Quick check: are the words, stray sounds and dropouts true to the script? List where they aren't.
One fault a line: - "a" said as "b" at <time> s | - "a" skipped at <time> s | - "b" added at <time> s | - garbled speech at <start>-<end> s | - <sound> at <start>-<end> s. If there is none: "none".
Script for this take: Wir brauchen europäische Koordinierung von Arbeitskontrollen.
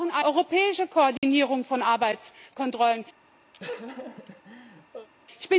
- dropout at 1.2-1.2 s
- laugh at 3.5-5.1 s